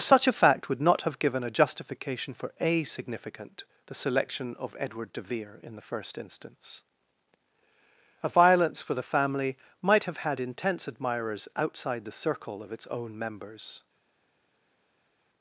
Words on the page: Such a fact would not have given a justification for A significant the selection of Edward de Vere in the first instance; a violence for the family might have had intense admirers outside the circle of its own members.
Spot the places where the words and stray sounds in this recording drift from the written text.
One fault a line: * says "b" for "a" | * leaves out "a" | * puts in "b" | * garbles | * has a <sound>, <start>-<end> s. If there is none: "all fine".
all fine